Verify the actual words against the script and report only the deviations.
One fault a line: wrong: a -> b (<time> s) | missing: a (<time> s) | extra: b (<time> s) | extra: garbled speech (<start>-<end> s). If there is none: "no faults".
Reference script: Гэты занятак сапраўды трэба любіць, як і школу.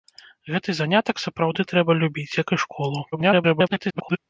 extra: garbled speech (3.1-4.2 s)